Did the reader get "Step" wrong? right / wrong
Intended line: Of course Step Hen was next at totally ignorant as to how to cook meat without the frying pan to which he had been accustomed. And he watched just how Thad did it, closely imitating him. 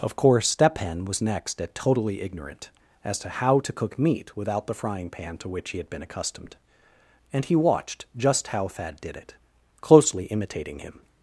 right